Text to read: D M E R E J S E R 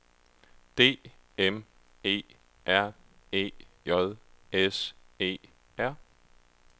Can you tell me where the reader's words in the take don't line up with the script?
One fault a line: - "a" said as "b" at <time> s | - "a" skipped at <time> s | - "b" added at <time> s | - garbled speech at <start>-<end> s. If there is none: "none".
none